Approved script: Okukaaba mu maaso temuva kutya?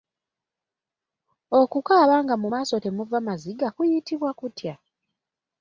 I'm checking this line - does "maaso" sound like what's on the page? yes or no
yes